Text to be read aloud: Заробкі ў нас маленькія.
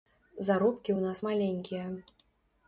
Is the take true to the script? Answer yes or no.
yes